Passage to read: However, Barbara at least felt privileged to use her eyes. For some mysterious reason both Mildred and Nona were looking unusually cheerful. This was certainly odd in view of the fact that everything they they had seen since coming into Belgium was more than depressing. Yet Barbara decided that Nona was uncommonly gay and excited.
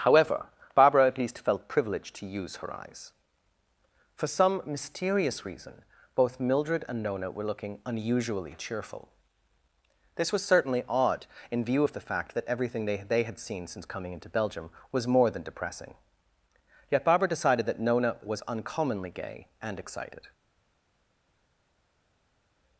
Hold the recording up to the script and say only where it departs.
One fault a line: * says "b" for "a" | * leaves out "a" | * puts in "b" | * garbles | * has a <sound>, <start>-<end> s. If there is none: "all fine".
all fine